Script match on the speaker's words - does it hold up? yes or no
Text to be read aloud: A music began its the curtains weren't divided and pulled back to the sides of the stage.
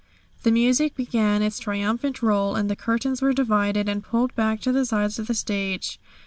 no